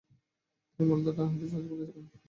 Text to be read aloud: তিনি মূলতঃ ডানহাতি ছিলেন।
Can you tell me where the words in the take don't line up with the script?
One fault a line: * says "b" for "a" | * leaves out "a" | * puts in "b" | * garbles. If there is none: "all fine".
* puts in "ফাস্ট বোলার"